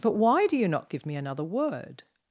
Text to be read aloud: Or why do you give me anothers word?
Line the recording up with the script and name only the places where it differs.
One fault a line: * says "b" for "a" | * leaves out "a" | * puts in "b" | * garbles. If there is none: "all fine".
* says "But" for "Or"
* puts in "not"
* says "another" for "anothers"